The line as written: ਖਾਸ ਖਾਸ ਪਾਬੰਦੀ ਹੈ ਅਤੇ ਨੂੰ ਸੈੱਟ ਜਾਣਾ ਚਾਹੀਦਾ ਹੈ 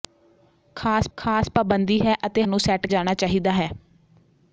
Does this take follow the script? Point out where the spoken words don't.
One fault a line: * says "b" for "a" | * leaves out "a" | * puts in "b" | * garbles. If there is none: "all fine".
all fine